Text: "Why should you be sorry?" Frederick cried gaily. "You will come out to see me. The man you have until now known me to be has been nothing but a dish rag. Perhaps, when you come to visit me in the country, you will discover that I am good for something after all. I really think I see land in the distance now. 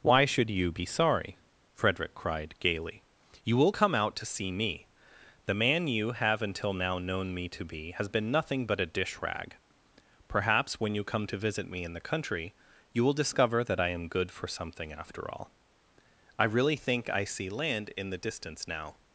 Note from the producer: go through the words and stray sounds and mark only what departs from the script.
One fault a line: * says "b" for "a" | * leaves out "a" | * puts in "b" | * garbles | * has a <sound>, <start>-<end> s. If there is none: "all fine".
all fine